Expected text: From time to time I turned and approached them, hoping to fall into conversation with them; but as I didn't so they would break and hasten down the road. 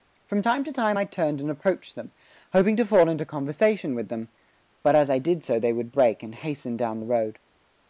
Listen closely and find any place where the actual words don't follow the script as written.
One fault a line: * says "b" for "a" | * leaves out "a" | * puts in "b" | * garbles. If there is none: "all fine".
* says "did" for "didn't"